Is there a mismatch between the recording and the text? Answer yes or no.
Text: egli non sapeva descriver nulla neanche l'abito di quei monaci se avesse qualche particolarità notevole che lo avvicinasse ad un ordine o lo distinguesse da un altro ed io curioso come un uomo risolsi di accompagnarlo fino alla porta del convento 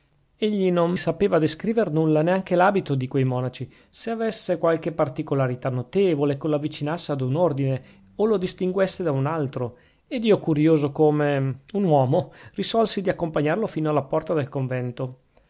no